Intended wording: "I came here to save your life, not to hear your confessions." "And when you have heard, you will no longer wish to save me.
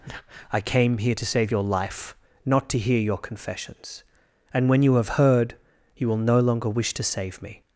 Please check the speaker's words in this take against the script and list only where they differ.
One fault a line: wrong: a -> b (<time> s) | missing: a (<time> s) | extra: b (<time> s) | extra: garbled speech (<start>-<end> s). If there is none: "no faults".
no faults